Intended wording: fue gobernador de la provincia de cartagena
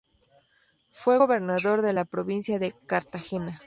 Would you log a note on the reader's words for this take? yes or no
no